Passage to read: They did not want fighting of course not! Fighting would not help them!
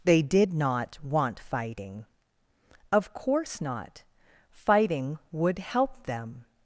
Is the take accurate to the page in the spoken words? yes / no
no